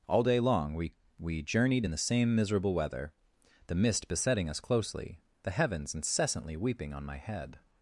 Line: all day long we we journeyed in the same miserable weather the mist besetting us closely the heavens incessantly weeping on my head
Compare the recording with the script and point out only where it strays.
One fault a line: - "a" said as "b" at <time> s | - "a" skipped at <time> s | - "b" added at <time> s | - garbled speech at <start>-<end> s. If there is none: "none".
none